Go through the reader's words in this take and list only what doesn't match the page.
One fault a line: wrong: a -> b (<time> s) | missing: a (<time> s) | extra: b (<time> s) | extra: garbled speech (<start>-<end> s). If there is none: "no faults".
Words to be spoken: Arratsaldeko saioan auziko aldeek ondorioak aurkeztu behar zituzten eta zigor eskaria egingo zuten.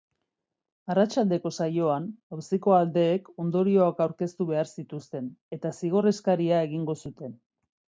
no faults